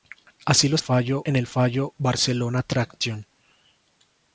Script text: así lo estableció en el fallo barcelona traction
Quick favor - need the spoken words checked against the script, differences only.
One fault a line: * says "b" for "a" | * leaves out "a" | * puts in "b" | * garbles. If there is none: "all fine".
* says "fallo" for "estableció"